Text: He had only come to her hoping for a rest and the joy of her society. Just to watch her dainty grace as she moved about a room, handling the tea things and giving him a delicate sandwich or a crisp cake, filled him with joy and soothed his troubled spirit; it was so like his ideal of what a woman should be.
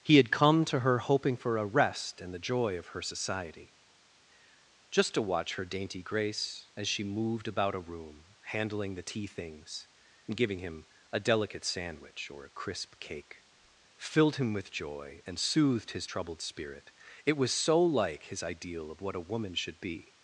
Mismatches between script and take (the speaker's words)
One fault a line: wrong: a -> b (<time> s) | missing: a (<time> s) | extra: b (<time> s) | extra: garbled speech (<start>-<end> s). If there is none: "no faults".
missing: only (0.3 s)